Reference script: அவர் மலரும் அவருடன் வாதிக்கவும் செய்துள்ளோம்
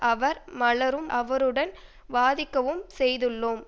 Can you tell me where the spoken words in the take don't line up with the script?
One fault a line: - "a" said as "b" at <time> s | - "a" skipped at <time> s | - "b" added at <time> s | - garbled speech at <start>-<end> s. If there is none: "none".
none